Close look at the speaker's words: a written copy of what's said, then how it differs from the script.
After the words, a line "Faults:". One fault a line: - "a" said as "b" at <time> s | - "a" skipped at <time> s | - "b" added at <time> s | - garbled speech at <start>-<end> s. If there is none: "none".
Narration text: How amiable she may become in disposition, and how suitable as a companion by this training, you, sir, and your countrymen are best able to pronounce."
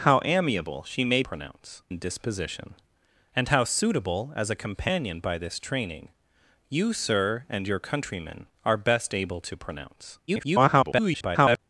How amiable she may pronounce in disposition, and how suitable as a companion by this training, you, sir, and your countrymen are best able to pronounce." [garbled]
Faults:
- "become" said as "pronounce" at 1.2 s
- garbled speech at 10.3-11.6 s